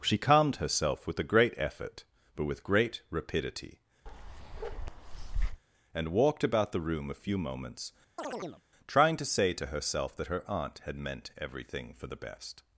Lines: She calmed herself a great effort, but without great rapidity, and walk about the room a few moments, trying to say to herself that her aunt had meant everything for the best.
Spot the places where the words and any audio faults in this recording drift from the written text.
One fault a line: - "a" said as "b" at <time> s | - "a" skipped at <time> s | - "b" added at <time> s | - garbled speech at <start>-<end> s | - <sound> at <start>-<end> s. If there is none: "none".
- "with" added at 1.1 s
- "without" said as "with" at 2.5 s
- bark at 4.1-5.6 s
- "walk" said as "walked" at 6.1 s
- chirp at 8.2-8.6 s